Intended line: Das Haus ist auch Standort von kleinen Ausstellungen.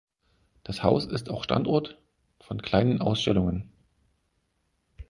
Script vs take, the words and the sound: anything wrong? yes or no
no